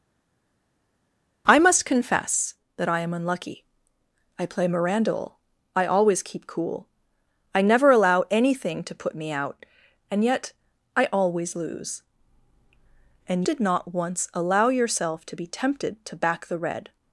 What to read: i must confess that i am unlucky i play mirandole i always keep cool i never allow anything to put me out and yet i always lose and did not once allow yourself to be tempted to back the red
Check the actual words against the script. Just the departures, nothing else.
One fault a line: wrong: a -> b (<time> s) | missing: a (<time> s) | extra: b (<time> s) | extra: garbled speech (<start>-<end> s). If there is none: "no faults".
no faults